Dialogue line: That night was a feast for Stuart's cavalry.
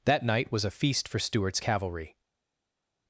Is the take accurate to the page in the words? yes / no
yes